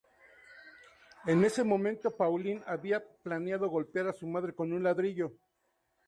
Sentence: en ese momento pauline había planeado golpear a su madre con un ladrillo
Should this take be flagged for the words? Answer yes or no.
no